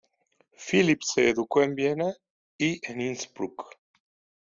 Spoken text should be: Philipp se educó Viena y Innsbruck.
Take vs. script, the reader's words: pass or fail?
fail